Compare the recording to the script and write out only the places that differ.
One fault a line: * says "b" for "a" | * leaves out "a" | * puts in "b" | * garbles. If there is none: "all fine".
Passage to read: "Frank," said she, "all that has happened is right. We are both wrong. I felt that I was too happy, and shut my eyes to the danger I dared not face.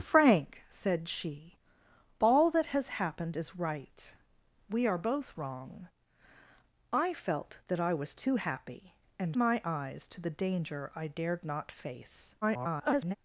* leaves out "shut"
* garbles